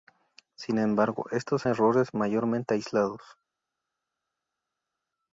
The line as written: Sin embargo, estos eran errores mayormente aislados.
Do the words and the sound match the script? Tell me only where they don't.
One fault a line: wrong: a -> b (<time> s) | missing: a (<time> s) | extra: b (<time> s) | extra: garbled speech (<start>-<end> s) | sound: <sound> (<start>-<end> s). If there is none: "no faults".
missing: eran (1.7 s)